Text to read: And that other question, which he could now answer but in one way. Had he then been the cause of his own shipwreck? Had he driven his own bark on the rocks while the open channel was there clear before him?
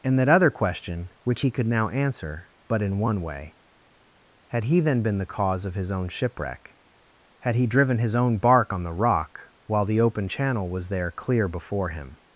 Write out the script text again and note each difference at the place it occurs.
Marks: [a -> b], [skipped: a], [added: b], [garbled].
And that other question, which he could now answer but in one way. Had he then been the cause of his own shipwreck? Had he driven his own bark on the [rocks -> rock] while the open channel was there clear before him?